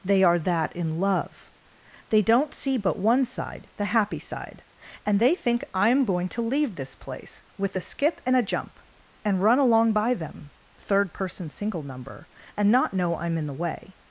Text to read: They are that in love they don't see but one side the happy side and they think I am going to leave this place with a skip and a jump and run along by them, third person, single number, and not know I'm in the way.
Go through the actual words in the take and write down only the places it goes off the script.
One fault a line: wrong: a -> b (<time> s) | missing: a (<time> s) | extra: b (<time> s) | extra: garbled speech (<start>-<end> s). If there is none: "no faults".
no faults